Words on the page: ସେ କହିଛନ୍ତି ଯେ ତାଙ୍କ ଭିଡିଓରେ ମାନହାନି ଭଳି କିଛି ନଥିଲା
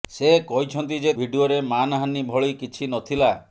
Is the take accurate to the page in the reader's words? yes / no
no